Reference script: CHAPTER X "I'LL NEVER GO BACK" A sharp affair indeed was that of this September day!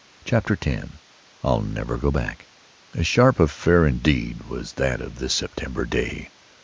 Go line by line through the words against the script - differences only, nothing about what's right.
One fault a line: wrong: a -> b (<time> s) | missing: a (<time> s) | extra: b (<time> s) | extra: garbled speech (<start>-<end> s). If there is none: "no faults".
no faults